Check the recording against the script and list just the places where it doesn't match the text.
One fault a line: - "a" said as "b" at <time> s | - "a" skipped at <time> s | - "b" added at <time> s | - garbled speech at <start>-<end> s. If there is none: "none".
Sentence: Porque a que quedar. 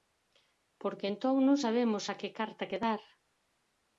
- "entón non sabemos" added at 1.1 s
- "carta" added at 2.4 s